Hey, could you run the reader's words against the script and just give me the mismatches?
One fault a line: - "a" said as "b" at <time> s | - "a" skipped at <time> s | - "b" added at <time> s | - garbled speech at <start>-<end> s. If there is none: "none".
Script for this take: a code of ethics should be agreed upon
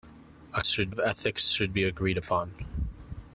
- "code" said as "should" at 0.6 s